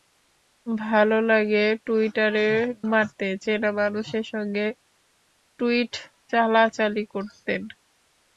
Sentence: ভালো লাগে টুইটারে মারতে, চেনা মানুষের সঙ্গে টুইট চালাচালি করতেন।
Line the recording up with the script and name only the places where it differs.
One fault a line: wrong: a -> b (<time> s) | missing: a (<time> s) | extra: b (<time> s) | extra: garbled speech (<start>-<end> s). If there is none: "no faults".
no faults